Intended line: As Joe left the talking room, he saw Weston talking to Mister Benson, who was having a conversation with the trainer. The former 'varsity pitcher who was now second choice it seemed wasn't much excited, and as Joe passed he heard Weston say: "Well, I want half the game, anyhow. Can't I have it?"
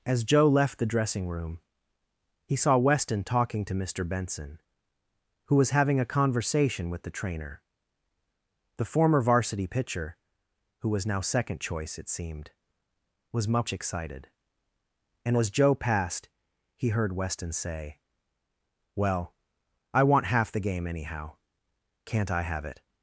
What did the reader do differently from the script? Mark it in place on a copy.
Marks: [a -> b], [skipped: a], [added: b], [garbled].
As Joe left the [talking -> dressing] room, he saw Weston talking to Mister Benson, who was having a conversation with the trainer. The former 'varsity pitcher who was now second choice it seemed [wasn't -> was] much excited, and as Joe passed he heard Weston say: "Well, I want half the game, anyhow. Can't I have it?"